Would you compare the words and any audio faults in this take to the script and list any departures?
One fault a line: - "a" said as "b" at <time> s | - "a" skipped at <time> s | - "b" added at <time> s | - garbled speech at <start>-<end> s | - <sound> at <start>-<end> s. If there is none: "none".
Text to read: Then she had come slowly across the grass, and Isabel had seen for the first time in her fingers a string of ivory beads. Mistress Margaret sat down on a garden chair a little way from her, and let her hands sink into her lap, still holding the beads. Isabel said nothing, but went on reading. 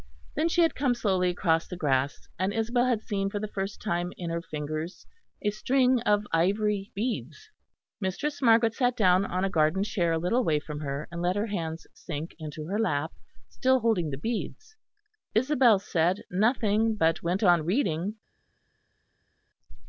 none